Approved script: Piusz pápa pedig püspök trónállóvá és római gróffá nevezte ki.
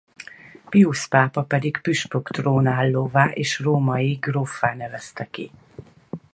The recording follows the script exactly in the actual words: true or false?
true